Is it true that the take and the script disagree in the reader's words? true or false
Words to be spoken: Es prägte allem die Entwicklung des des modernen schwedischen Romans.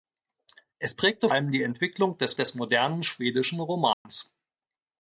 false